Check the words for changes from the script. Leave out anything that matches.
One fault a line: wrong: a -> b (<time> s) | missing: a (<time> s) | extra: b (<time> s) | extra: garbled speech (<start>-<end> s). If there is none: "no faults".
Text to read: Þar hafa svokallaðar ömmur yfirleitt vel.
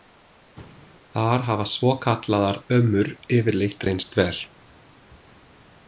extra: reynst (3.9 s)